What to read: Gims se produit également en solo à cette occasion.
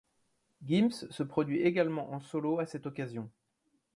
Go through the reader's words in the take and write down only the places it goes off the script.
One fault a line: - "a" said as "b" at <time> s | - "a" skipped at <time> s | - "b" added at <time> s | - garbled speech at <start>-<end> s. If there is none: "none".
none